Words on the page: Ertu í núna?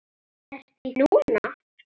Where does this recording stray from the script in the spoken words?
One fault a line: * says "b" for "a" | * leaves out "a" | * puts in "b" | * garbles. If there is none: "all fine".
all fine